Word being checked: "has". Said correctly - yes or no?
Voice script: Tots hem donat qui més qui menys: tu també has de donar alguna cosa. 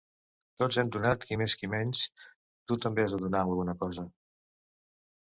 yes